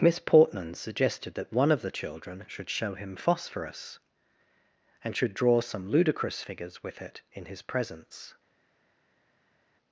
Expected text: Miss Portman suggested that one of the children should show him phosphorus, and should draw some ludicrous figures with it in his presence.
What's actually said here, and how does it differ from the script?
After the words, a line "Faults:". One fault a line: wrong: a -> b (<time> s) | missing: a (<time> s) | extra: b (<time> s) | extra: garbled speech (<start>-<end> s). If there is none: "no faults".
Miss Portman suggested that one of the children should show him phosphorus, and should draw some ludicrous figures with it in his presence.
Faults:
no faults